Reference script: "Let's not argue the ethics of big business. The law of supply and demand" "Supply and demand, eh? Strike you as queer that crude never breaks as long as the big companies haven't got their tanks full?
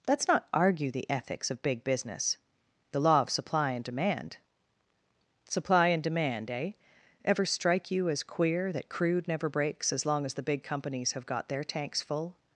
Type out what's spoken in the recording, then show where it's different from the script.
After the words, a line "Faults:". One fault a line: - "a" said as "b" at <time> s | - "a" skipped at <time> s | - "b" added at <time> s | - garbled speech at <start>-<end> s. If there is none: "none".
"Let's not argue the ethics of big business. The law of supply and demand" "Supply and demand, eh? Ever strike you as queer that crude never breaks as long as the big companies have got their tanks full?
Faults:
- "Ever" added at 7.2 s
- "haven't" said as "have" at 11.1 s